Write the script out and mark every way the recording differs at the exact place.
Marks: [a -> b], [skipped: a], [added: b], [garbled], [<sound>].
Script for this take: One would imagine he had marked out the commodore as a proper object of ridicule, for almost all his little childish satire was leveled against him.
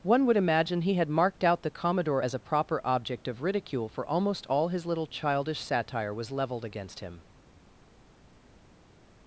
One would imagine he had marked out the commodore as a proper object of ridicule, for almost all his little childish satire was leveled against him.